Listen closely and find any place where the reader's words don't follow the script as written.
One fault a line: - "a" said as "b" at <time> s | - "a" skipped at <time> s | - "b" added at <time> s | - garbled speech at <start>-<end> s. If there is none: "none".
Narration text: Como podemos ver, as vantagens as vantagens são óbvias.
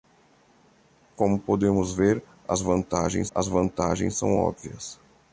none